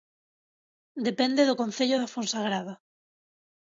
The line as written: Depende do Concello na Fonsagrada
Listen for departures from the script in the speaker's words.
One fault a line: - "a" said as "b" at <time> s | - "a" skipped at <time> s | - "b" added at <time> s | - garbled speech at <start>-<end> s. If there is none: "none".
- "na" said as "da" at 2.0 s